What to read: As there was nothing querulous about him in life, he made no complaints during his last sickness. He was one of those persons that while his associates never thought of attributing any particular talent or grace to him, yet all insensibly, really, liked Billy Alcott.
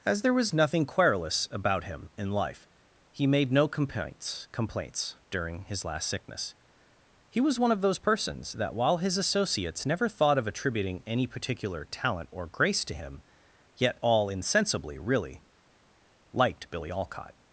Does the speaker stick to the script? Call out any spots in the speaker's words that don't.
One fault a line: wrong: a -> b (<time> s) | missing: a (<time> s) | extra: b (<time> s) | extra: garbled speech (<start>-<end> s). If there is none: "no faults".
extra: complaints (4.5 s)